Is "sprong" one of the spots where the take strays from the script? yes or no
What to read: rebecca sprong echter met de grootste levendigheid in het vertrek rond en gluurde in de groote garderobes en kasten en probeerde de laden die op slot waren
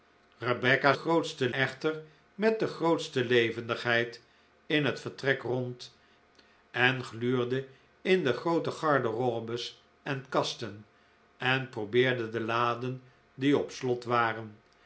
yes